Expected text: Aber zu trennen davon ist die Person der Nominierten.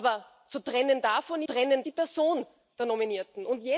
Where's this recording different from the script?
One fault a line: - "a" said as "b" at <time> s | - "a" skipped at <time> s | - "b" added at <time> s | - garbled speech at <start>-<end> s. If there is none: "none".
- "ist" said as "trennen" at 1.4 s